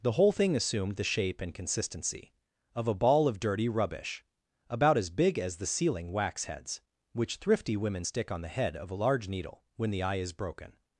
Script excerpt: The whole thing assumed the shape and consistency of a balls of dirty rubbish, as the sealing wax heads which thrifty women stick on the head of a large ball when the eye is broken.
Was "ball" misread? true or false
true